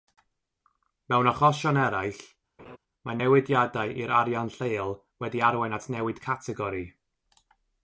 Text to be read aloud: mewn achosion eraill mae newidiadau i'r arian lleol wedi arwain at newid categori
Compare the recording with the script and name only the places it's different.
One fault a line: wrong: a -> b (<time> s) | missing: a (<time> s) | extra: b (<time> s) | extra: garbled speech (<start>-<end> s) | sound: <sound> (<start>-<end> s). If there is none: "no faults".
sound: laugh (2.6-2.8 s)